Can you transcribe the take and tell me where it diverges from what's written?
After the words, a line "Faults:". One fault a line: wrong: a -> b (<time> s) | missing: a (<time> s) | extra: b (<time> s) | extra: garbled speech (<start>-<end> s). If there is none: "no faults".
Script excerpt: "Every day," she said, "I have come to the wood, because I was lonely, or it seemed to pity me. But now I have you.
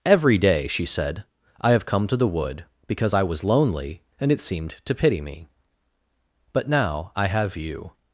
"Every day," she said, "I have come to the wood, because I was lonely, and it seemed to pity me. But now I have you.
Faults:
wrong: or -> and (4.2 s)